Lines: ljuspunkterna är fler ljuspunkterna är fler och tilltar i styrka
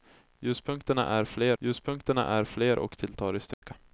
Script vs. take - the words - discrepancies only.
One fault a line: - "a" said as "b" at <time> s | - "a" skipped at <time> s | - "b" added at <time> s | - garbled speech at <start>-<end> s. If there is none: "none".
none